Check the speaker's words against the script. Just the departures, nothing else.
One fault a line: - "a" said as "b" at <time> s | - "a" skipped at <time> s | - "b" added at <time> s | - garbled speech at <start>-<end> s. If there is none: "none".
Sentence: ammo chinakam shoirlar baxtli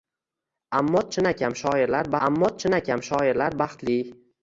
- "ammo chinakam shoirlar" added at 2.3 s